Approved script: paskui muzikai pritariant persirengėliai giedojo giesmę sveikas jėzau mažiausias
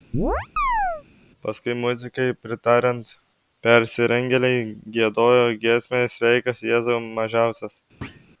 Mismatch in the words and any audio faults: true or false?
true